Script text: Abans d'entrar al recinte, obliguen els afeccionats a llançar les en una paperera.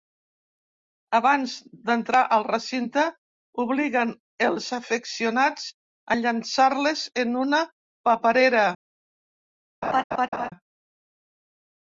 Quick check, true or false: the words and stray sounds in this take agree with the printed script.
false